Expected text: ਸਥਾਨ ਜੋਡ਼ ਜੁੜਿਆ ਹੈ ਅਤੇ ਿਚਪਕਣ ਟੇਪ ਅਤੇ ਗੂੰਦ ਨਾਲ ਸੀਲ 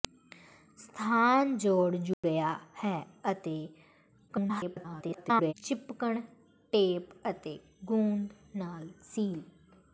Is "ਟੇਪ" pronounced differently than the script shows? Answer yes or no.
no